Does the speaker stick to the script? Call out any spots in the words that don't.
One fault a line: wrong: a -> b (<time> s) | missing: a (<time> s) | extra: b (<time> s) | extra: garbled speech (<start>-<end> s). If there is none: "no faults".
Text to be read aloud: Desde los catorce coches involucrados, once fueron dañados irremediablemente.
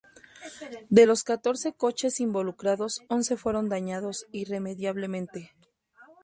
wrong: Desde -> De (0.9 s)